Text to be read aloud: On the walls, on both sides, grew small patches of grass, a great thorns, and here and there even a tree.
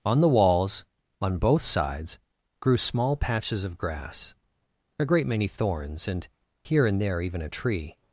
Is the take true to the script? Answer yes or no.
no